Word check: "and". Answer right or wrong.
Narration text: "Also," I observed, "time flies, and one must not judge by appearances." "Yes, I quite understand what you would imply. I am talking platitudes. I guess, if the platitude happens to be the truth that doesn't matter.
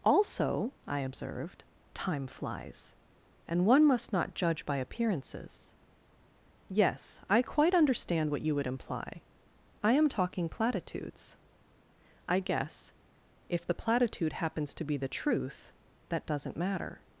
right